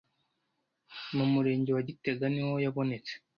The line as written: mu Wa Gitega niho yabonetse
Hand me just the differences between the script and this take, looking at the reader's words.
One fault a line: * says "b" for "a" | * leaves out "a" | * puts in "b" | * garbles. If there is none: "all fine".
* puts in "Murenge"